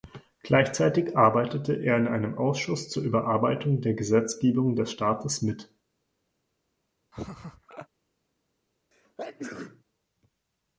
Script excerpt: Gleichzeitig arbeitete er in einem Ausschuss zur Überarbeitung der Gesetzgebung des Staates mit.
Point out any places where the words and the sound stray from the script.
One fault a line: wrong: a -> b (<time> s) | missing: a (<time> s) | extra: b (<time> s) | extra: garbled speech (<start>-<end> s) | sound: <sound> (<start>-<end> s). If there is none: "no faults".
sound: laugh (7.1-7.9 s)
sound: sneeze (8.9-9.8 s)